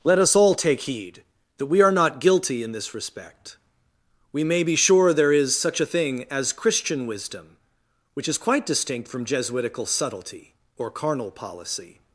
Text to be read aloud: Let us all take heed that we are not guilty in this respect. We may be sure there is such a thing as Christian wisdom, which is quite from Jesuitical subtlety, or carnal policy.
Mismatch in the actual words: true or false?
true